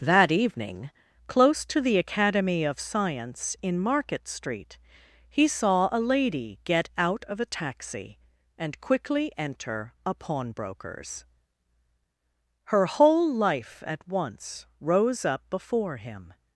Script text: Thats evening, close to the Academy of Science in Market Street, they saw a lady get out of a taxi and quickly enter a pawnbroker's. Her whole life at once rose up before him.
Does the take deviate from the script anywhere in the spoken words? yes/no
yes